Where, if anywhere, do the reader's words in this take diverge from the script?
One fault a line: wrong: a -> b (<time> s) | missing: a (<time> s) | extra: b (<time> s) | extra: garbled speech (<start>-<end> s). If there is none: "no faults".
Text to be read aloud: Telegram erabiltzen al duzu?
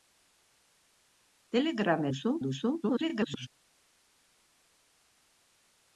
wrong: erabiltzen -> duzu (2.1 s)
extra: garbled speech (2.8-3.5 s)